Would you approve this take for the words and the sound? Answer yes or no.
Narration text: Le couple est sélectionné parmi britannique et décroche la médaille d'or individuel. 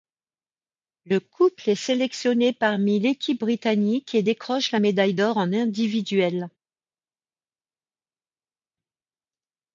no